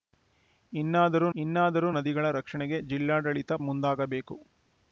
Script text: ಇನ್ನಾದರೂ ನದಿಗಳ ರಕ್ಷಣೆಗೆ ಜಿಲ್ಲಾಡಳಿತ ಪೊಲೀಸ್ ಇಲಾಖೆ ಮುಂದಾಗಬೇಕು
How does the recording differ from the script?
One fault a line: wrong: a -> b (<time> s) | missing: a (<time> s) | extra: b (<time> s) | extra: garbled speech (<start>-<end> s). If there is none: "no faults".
extra: ಇನ್ನಾದರೂ (1.3 s)
missing: ಪೊಲೀಸ್ ಇಲಾಖೆ (3.5 s)